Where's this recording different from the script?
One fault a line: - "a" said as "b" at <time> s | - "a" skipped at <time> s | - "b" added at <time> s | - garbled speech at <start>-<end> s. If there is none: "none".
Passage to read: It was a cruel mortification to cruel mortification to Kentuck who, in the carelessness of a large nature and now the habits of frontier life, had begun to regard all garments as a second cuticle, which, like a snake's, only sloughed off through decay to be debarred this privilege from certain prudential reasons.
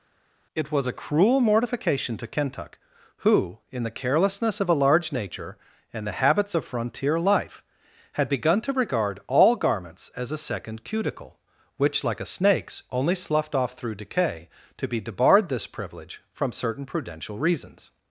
- "cruel mortification to" skipped at 2.3 s
- "now" skipped at 6.1 s